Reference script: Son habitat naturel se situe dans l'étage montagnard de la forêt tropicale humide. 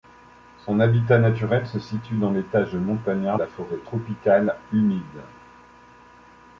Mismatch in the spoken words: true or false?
true